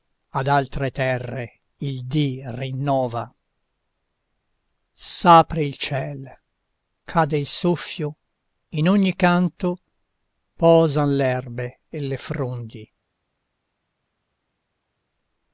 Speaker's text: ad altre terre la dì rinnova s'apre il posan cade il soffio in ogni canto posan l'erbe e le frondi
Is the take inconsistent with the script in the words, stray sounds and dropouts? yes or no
yes